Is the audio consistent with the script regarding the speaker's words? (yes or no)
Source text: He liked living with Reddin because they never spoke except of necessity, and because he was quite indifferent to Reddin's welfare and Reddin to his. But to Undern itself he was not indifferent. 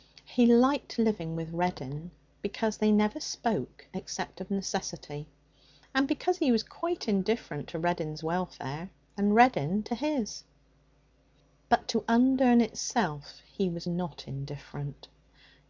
yes